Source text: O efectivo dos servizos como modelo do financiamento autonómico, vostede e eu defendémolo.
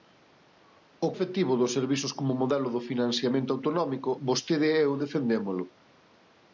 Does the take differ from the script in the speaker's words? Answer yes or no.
no